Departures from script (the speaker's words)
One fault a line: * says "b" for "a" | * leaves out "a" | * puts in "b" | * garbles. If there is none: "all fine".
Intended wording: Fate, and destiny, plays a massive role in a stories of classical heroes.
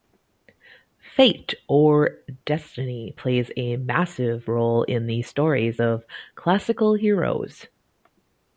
* says "or" for "and"
* says "the" for "a"